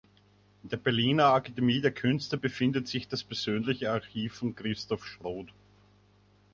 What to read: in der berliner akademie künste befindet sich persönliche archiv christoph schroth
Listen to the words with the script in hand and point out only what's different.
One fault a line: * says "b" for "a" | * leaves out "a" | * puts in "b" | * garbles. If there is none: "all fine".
* puts in "der"
* puts in "das"
* puts in "von"